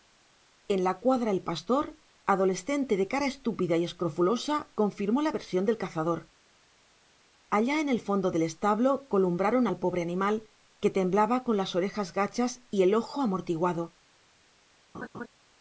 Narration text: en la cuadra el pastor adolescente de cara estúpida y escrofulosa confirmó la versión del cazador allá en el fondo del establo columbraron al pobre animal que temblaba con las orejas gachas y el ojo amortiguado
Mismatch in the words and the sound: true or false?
true